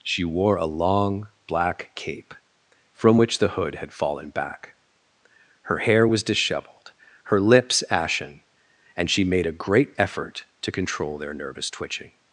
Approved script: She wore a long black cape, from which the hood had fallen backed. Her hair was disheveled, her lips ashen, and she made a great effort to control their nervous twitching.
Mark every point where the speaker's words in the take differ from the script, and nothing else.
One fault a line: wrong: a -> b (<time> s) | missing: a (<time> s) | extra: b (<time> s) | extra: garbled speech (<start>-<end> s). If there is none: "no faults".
wrong: backed -> back (4.3 s)